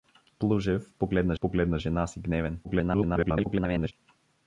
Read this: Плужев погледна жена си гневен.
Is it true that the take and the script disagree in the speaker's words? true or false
true